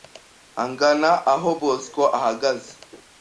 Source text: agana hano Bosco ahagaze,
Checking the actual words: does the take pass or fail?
fail